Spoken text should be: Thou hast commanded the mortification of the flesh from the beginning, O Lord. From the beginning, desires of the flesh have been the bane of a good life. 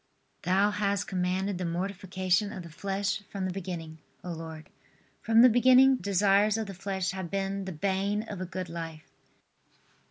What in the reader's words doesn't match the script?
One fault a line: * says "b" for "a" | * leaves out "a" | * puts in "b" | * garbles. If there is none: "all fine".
all fine